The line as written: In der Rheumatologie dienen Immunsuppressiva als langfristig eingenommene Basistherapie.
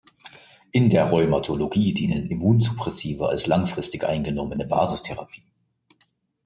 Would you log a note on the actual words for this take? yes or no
no